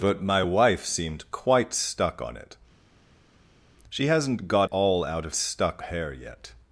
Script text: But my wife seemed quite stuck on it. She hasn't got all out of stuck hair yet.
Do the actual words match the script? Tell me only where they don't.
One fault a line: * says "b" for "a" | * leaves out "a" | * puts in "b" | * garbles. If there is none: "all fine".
all fine